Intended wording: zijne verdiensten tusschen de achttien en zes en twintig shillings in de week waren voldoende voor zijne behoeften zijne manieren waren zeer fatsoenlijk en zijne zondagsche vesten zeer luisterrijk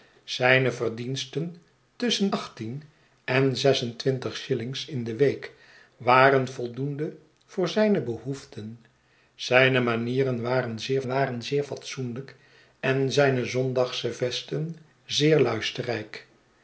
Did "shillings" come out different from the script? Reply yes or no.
no